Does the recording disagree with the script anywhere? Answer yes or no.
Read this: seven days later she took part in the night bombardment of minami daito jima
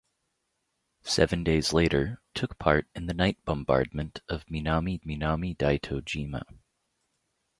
yes